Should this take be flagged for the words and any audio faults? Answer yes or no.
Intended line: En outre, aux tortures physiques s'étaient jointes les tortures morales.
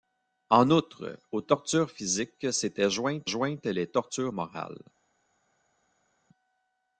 yes